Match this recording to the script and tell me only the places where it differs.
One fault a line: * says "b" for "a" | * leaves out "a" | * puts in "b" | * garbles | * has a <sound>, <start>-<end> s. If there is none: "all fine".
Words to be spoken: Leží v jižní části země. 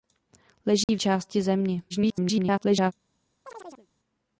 * has a dropout, 0.8-0.9 s
* leaves out "jižní"
* garbles
* has a chirp, 3.4-3.9 s